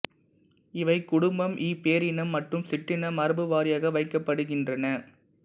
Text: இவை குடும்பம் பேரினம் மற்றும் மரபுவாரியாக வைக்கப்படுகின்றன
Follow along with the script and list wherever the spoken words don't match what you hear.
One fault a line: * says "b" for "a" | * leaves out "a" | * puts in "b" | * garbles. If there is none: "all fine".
* puts in "இ"
* puts in "சிற்றின"